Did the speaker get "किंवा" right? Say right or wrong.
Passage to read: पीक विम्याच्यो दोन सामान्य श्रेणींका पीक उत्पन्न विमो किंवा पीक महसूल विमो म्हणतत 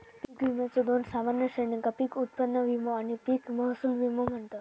wrong